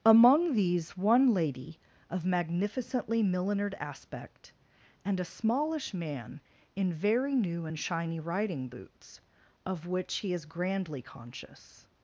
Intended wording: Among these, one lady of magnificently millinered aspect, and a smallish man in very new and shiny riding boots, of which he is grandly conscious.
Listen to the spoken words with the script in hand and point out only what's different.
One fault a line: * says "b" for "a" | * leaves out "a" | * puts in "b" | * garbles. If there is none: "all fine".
all fine